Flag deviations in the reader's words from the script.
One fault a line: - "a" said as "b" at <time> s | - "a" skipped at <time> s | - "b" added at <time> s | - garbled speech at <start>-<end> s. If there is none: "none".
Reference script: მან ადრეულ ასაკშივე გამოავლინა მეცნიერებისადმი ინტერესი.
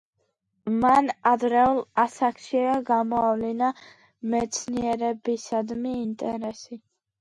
none